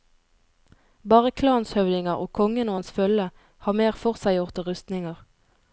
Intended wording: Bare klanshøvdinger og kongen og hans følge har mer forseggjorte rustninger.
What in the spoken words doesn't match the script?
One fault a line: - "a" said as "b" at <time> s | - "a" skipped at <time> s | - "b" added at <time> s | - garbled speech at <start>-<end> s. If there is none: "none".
none